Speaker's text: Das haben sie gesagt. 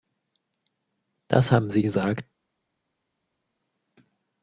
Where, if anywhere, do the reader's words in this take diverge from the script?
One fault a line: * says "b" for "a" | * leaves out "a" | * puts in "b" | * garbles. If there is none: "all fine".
all fine